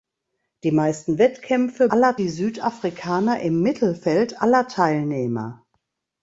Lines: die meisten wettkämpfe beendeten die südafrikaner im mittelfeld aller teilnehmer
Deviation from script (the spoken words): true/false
true